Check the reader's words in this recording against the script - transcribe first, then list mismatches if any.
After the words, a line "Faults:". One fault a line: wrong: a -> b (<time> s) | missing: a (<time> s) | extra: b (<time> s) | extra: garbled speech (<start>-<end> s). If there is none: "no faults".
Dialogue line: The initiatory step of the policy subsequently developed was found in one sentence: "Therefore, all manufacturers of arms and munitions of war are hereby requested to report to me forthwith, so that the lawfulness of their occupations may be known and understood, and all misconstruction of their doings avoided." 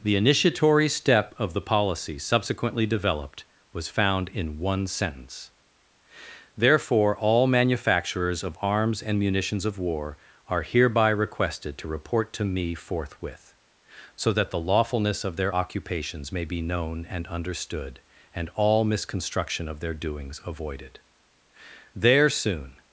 The initiatory step of the policy subsequently developed was found in one sentence: "Therefore, all manufacturers of arms and munitions of war are hereby requested to report to me forthwith, so that the lawfulness of their occupations may be known and understood, and all misconstruction of their doings avoided." There soon
Faults:
extra: There soon (21.9 s)